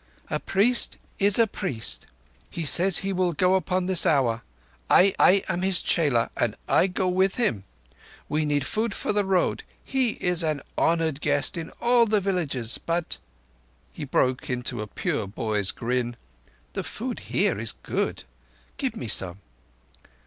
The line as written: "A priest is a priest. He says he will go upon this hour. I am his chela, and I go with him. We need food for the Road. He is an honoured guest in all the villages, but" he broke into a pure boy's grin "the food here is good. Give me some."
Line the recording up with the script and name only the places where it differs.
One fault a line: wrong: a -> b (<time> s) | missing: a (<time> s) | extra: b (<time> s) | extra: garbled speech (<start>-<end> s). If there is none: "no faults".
extra: I (5.2 s)